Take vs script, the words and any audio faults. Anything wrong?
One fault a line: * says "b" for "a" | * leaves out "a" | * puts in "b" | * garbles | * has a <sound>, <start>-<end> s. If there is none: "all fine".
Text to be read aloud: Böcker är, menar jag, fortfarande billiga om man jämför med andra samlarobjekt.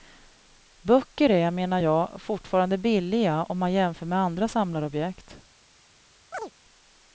* has a chirp, 6.3-6.5 s